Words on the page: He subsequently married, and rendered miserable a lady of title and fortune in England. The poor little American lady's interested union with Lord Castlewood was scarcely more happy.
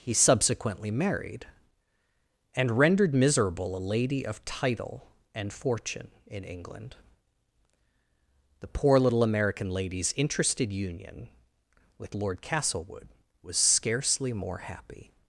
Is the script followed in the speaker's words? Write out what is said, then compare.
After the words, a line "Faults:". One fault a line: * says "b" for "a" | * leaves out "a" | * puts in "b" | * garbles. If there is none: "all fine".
He subsequently married, and rendered miserable a lady of title and fortune in England. The poor little American lady's interested union with Lord Castlewood was scarcely more happy.
Faults:
all fine